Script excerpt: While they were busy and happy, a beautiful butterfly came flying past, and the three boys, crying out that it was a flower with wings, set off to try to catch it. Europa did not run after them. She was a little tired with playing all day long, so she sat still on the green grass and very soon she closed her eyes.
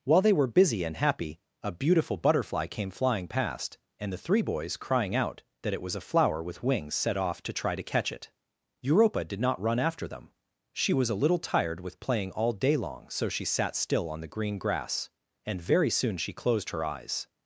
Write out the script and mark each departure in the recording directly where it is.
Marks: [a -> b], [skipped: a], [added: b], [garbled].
While they were busy and happy, a beautiful butterfly came flying past, and the three boys, crying out that it was a flower with wings, set off to try to catch it. Europa did not run after them. She was a little tired with playing all day long, so she sat still on the green grass and very soon she closed her eyes.